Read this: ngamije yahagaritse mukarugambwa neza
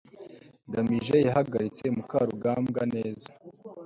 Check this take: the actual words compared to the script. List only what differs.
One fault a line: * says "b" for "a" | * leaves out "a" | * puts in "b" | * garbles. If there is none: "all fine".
all fine